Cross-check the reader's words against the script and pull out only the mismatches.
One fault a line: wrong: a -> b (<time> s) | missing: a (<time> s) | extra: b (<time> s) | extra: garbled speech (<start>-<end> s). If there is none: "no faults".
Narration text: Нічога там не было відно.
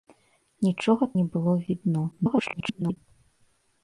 missing: там (1.1 s)
extra: garbled speech (2.1-3.0 s)